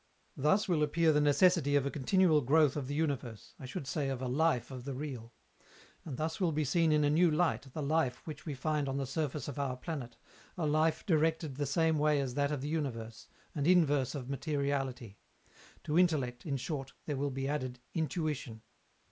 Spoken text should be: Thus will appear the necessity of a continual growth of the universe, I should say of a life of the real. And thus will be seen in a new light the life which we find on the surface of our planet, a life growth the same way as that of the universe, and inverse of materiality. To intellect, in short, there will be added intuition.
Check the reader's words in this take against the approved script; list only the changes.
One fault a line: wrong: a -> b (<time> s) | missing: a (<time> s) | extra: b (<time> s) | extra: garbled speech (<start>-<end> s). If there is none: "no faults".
wrong: growth -> directed (11.0 s)